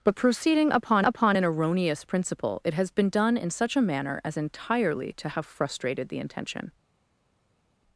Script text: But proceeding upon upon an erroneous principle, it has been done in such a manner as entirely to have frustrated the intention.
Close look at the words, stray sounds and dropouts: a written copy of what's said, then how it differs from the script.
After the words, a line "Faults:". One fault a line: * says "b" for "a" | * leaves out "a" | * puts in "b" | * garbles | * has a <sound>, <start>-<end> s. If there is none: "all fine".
But proceeding upon upon an erroneous principle, it has been done in such a manner as entirely to have frustrated the intention.
Faults:
all fine